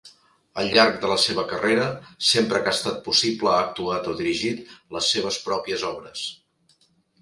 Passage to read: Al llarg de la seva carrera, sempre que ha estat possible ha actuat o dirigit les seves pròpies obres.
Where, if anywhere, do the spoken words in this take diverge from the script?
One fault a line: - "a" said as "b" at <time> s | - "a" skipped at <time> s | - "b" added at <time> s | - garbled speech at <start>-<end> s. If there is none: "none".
none